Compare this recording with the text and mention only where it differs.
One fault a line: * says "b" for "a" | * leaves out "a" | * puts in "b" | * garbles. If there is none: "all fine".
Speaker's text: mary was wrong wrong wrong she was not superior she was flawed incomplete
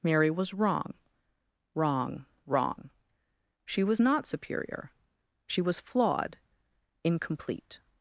all fine